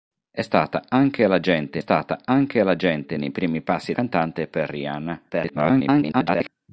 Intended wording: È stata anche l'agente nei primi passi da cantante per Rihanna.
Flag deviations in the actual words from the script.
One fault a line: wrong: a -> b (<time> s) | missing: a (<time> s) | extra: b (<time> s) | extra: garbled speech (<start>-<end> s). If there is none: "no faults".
extra: stata anche l'agente (1.8 s)
missing: da (3.9 s)
extra: garbled speech (5.3-6.5 s)